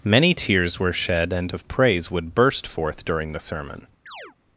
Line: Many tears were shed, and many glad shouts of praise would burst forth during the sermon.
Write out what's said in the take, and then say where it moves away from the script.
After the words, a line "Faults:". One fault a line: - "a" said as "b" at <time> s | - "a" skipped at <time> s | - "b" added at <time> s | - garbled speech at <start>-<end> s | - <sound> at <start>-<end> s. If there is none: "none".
Many tears were shed, and of praise would burst forth during the sermon.
Faults:
- "many glad shouts" skipped at 1.6 s
- chirp at 4.1-4.4 s